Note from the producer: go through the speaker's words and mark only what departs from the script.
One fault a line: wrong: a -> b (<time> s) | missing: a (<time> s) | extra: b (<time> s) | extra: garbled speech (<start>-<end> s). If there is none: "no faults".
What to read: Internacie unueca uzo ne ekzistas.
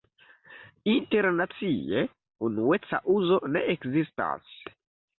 no faults